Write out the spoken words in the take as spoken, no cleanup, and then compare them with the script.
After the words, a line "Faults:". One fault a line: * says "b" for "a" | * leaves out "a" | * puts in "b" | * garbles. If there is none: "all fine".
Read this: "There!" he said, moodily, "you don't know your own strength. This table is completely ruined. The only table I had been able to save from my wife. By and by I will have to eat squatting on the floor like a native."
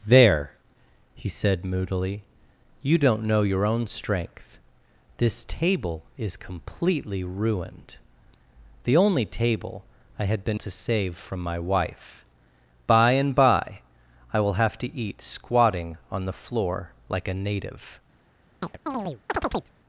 "There!" he said, moodily, "you don't know your own strength. This table is completely ruined. The only table I had been to save from my wife. By and by I will have to eat squatting on the floor like a native."
Faults:
* leaves out "able"